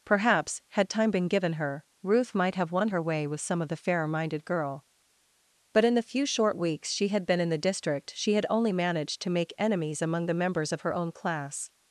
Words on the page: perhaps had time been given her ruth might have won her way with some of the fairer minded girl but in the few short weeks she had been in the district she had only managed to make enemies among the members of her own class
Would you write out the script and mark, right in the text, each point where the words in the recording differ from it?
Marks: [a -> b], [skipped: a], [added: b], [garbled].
perhaps had time been given her ruth might have won her way with some of the fairer minded girl but in the few short weeks she had been in the district she had only managed to make enemies among the members of her own class